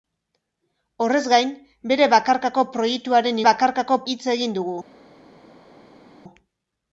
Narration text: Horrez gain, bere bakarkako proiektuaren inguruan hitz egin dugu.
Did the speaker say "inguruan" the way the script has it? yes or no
no